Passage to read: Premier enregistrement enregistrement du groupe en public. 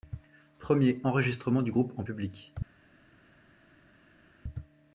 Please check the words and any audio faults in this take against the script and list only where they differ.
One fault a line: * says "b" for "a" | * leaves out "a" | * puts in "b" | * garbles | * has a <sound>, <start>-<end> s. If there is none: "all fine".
* leaves out "enregistrement"